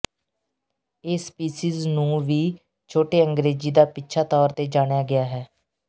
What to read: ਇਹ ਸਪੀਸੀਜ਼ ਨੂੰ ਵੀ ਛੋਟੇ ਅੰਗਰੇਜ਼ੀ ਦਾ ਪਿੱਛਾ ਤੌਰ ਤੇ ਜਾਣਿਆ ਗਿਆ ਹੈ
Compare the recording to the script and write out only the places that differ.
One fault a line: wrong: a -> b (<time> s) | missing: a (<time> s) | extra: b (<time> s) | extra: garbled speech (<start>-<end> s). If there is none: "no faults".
no faults